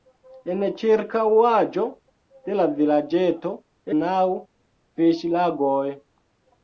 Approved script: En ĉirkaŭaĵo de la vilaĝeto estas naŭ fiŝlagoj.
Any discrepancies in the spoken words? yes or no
yes